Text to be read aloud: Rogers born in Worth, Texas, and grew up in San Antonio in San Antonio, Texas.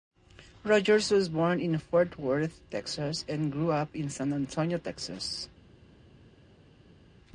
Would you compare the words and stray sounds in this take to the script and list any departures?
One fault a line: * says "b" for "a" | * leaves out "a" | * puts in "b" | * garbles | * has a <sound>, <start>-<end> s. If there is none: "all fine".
* puts in "was"
* puts in "Fort"
* leaves out "in San Antonio"